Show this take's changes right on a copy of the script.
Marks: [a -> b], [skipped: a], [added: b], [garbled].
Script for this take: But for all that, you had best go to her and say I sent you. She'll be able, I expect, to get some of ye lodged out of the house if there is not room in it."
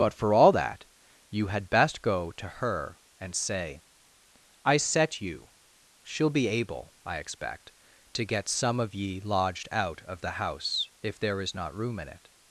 But for all that, you had best go to her and say I [sent -> set] you. She'll be able, I expect, to get some of ye lodged out of the house if there is not room in it."